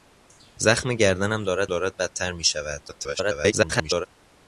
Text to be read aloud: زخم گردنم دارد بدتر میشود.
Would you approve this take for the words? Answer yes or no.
no